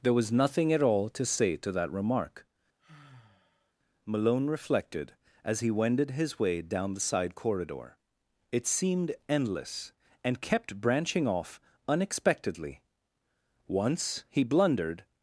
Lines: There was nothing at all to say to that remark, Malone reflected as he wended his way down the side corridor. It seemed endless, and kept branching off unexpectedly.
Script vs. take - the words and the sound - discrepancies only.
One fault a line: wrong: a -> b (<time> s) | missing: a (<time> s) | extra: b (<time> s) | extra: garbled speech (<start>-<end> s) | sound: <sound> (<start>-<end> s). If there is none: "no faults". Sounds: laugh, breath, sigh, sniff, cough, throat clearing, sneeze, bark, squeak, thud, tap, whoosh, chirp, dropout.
sound: sigh (2.8-3.7 s)
extra: Once he blundered (13.7 s)